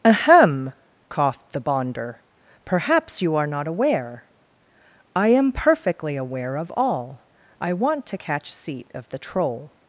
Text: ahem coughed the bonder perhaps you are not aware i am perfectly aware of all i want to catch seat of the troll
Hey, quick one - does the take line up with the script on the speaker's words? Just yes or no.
yes